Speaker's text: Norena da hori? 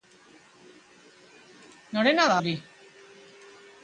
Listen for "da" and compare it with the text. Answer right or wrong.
right